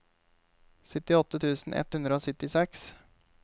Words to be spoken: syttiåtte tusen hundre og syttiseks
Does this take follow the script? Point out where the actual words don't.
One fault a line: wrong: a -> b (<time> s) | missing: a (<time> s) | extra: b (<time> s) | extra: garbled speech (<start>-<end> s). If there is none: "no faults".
extra: ett (1.8 s)